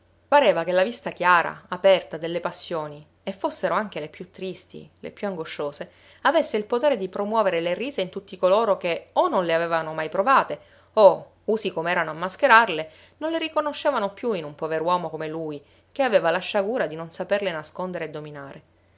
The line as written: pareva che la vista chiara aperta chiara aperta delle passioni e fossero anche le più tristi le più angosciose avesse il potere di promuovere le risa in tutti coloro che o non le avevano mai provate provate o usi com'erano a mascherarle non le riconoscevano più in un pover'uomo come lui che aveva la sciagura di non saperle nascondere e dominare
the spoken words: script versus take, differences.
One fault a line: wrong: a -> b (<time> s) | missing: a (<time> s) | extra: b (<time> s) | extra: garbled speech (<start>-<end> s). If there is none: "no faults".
missing: chiara aperta (2.2 s)
missing: provate (10.6 s)